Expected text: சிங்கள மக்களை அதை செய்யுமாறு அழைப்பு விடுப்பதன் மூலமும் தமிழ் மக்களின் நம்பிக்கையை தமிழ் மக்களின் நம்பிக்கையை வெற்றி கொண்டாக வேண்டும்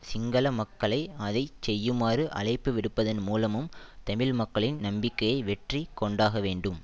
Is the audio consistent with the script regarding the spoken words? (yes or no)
no